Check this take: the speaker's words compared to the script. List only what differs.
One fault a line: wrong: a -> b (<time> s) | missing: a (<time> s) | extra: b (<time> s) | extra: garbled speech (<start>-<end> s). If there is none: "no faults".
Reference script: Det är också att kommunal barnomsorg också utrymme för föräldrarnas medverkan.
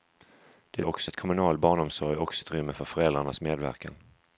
no faults